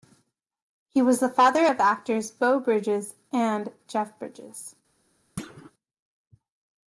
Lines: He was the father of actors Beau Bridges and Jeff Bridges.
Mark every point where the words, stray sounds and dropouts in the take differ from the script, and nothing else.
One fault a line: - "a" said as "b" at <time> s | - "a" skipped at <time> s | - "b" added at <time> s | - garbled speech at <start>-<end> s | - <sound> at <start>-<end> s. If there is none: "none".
- thud at 5.4-5.7 s